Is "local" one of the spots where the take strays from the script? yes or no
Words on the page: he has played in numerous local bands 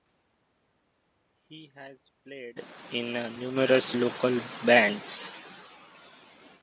no